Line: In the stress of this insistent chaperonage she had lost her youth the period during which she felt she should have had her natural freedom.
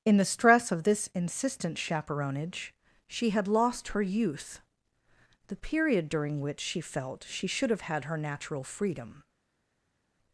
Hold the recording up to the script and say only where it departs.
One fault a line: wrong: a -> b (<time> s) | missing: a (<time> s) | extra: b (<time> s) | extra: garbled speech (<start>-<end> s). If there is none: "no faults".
no faults